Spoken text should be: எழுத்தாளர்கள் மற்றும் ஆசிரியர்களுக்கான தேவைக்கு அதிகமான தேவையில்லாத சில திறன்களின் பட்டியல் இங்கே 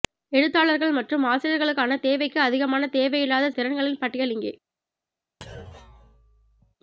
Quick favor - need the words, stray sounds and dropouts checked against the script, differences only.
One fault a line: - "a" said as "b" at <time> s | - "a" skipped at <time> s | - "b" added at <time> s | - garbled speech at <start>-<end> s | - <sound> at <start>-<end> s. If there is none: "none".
- "சில" skipped at 3.5 s
- thud at 5.4-6.8 s